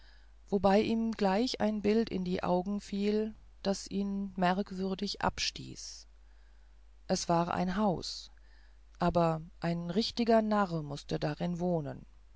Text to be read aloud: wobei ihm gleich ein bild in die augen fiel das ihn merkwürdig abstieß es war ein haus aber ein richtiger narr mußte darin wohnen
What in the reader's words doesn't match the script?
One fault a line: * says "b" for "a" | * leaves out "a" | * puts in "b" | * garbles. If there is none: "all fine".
all fine